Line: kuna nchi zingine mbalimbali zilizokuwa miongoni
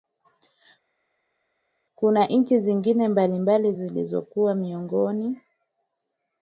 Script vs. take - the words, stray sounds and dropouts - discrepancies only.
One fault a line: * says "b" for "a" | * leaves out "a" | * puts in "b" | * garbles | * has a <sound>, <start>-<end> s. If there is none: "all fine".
all fine